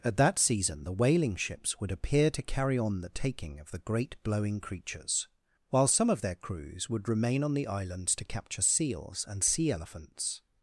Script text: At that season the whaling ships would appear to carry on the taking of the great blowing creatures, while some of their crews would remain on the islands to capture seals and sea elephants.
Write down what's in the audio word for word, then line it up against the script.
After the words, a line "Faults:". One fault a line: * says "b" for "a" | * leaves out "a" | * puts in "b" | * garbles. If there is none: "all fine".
At that season the whaling ships would appear to carry on the taking of the great blowing creatures, while some of their crews would remain on the islands to capture seals and sea elephants.
Faults:
all fine